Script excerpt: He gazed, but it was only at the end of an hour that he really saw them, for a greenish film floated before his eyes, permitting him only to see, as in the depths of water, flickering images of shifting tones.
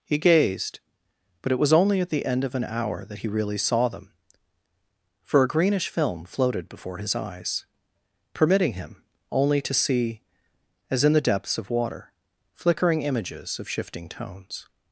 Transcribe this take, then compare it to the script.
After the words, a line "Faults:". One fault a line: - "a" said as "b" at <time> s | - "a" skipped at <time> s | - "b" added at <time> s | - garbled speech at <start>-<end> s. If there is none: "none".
He gazed, but it was only at the end of an hour that he really saw them, for a greenish film floated before his eyes, permitting him only to see, as in the depths of water, flickering images of shifting tones.
Faults:
none